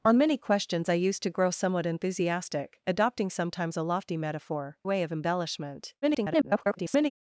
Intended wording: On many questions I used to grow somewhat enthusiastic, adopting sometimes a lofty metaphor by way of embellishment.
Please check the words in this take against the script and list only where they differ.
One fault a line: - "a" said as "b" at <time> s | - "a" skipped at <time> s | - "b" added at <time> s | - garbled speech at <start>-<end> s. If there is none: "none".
- "by" skipped at 4.8 s
- garbled speech at 6.0-7.1 s